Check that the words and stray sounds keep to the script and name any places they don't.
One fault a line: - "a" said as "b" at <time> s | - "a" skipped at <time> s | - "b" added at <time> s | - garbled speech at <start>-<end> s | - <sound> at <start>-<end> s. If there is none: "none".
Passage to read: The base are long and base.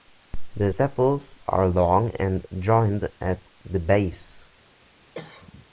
- "base" said as "sepals" at 0.7 s
- "joined at the" added at 2.6 s
- cough at 5.1-5.7 s